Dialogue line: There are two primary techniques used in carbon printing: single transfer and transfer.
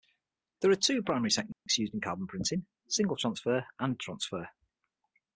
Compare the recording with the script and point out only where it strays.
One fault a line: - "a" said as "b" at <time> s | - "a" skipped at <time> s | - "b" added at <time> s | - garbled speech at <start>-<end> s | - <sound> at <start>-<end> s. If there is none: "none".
- dropout at 1.5-1.7 s